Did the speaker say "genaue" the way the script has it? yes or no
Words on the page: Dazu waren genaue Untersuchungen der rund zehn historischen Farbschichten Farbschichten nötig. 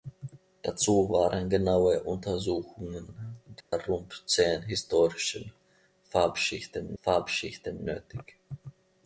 yes